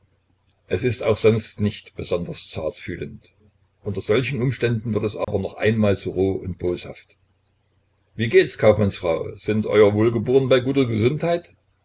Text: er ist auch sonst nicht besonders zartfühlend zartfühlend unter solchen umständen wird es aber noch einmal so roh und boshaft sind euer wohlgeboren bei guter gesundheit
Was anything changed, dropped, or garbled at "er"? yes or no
yes